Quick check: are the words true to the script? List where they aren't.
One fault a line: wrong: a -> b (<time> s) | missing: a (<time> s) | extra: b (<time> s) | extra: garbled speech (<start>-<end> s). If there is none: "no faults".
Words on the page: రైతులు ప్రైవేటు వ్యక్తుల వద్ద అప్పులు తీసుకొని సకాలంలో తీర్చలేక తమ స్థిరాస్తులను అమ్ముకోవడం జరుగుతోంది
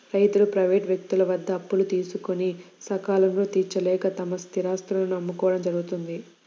no faults